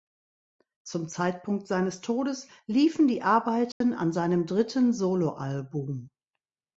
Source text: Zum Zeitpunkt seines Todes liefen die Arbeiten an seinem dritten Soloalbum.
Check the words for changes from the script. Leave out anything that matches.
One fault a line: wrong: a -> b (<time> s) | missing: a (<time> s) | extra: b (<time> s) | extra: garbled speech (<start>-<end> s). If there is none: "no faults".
no faults